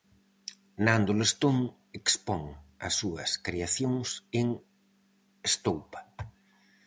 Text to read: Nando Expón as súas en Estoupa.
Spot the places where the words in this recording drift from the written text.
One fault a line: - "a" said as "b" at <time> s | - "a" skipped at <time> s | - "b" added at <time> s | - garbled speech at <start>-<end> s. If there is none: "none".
- "Lestón" added at 1.2 s
- "creacións" added at 3.5 s